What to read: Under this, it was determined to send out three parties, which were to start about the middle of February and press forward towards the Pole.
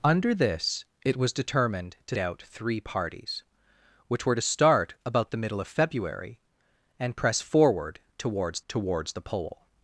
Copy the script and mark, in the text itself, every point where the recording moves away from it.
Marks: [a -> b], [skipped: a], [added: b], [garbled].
Under this, it was determined to [skipped: send] out three parties, which were to start about the middle of February and press forward towards [added: towards] the Pole.